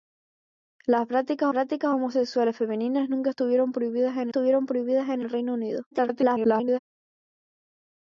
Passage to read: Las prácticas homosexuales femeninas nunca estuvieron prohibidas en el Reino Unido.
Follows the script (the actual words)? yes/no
no